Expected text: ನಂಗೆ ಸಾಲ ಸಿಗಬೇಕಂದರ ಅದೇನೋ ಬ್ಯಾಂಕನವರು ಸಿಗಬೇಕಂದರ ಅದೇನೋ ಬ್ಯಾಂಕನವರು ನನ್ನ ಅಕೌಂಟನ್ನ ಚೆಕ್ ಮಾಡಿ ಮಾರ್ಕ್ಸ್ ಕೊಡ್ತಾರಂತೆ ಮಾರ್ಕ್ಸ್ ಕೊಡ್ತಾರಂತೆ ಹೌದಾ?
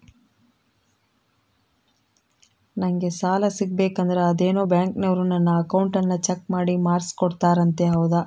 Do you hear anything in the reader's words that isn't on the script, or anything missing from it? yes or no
yes